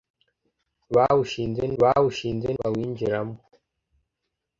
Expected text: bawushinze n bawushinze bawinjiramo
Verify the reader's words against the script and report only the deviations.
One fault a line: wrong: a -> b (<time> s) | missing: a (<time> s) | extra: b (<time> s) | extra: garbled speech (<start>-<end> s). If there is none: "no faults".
no faults